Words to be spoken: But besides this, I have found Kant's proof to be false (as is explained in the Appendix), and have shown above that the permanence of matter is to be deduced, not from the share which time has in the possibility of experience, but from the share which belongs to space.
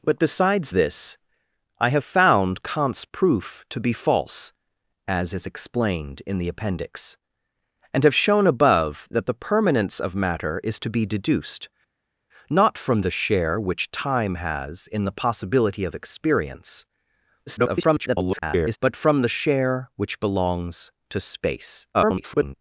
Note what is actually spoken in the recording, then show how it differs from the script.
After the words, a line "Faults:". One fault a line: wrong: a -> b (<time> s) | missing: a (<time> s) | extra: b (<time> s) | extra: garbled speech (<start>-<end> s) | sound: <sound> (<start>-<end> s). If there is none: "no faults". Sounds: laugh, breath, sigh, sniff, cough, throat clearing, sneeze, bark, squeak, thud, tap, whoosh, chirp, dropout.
But besides this, I have found Kant's proof to be false (as is explained in the Appendix), and have shown above that the permanence of matter is to be deduced, not from the share which time has in the possibility of experience, [garbled] but from the share which belongs to space. [garbled]
Faults:
extra: garbled speech (17.5-18.8 s)
extra: garbled speech (21.9-22.5 s)